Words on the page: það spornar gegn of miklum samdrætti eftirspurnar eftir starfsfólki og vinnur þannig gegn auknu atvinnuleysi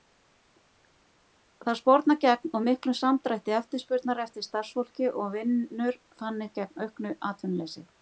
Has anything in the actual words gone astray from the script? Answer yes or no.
no